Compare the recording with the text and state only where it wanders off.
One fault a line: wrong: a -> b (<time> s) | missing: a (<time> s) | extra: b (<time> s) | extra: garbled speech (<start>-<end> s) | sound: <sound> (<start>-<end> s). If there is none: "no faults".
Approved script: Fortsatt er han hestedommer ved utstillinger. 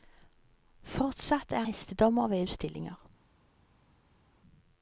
missing: han (1.6 s)